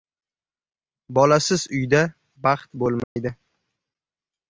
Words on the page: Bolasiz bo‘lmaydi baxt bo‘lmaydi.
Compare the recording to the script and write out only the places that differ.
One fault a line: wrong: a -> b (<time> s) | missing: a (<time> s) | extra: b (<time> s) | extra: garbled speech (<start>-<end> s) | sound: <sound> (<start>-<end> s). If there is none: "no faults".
wrong: bo‘lmaydi -> uyda (1.8 s)
sound: dropout (3.0-3.2 s)